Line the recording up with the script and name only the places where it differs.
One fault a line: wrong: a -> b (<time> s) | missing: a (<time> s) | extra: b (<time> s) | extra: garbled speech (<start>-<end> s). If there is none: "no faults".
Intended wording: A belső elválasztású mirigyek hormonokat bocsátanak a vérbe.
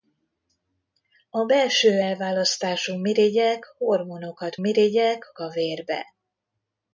wrong: bocsátanak -> mirigyek (4.6 s)